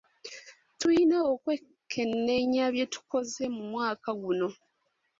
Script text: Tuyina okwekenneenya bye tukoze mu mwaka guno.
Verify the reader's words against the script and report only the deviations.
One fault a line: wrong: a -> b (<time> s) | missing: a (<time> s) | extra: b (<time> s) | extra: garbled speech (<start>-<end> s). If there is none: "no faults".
no faults